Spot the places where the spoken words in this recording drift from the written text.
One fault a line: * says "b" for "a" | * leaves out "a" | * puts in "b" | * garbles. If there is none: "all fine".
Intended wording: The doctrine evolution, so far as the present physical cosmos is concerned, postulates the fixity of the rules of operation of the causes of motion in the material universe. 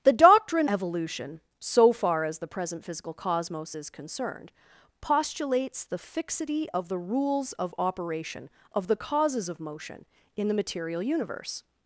all fine